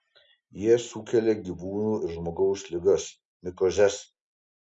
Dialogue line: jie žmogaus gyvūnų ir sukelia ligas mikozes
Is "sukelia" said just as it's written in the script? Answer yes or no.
no